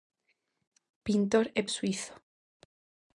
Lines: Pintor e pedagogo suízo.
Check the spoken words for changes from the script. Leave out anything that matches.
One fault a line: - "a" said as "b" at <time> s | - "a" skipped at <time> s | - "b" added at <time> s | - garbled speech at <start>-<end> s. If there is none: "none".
- "pedagogo" skipped at 1.6 s